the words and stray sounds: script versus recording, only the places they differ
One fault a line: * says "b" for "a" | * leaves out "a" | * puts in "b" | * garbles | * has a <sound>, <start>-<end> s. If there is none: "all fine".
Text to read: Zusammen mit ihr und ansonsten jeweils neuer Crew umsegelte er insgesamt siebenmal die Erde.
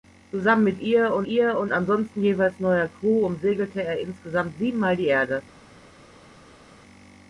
* puts in "ihr und"